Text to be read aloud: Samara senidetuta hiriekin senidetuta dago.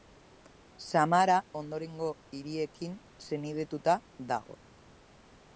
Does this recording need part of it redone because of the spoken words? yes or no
yes